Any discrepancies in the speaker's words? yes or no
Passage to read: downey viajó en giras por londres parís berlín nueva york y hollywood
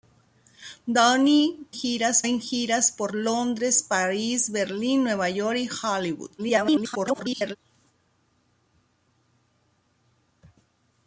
yes